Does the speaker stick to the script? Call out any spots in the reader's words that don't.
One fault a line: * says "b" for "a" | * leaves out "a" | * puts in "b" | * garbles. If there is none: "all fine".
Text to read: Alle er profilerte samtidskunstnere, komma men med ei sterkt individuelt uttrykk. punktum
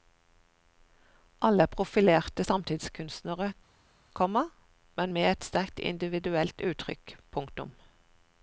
* says "et" for "ei"